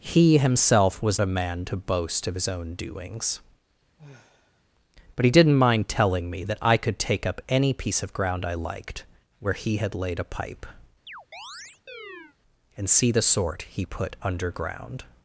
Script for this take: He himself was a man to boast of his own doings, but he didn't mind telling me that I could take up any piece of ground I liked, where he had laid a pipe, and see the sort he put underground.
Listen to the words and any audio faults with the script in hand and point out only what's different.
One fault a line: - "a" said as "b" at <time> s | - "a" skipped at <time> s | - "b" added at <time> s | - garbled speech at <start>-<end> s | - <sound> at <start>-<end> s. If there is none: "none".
- sigh at 4.0-4.6 s
- chirp at 11.1-12.4 s